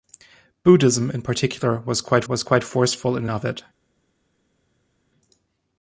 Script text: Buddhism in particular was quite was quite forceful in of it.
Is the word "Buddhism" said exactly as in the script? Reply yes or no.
yes